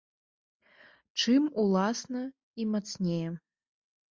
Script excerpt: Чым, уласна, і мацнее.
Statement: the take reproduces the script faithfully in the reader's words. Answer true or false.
true